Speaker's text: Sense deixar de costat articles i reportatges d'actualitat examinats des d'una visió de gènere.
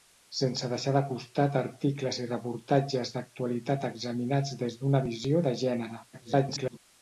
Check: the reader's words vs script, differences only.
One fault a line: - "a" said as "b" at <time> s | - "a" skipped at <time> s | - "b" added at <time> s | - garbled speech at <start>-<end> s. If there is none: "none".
- garbled speech at 6.1-6.8 s